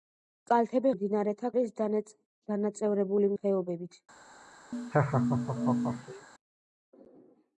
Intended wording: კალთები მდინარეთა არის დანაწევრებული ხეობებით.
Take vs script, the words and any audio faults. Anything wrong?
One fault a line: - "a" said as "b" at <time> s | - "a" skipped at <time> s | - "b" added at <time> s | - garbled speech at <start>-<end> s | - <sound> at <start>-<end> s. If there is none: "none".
- laugh at 4.7-6.3 s